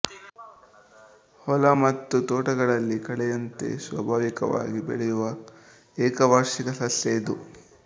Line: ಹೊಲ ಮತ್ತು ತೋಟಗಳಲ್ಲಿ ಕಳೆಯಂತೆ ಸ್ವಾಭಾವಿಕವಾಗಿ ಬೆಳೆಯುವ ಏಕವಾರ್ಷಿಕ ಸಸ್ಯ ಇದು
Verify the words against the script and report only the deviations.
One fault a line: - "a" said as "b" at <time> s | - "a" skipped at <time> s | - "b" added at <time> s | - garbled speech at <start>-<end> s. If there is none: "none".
none